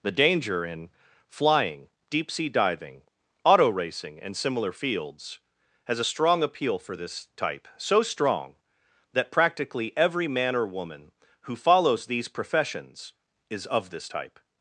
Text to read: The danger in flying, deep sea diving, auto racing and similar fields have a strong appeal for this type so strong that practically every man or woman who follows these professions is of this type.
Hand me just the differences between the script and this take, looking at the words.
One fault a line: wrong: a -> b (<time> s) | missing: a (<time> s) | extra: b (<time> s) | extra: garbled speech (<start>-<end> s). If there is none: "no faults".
wrong: have -> has (5.8 s)